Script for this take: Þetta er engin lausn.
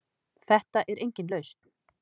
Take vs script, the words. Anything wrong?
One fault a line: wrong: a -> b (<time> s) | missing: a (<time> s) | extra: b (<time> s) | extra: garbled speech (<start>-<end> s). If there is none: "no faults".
no faults